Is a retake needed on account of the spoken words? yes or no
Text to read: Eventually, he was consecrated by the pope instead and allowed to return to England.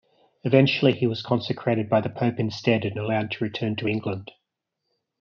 no